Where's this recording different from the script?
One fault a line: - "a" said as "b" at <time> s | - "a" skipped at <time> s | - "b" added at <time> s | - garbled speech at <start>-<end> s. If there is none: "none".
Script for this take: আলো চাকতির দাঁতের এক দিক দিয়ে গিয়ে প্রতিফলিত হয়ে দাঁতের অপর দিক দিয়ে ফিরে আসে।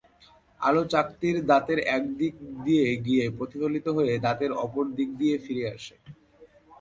none